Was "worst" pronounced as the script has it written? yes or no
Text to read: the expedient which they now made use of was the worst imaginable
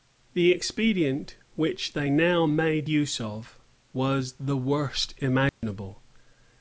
yes